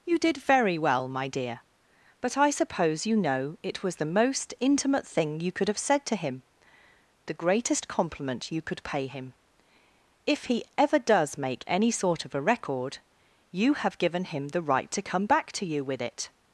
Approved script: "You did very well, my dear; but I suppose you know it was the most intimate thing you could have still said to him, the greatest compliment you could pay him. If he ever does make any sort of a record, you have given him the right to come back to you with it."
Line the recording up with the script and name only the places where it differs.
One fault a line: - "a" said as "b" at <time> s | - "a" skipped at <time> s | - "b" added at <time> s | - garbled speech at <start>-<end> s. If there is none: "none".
- "still" skipped at 5.8 s